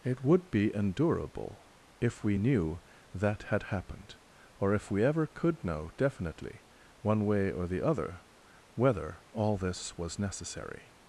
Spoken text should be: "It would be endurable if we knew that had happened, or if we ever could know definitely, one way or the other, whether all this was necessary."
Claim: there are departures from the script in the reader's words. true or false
false